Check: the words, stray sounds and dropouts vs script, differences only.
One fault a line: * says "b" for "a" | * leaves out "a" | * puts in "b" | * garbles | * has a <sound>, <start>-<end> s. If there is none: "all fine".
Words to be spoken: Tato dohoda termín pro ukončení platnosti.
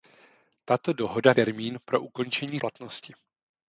all fine